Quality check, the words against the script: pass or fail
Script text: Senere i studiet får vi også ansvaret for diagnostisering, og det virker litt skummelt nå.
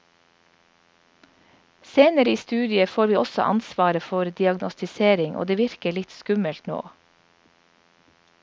pass